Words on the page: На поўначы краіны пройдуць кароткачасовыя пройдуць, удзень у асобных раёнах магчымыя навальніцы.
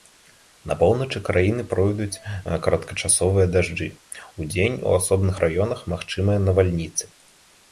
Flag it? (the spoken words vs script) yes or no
yes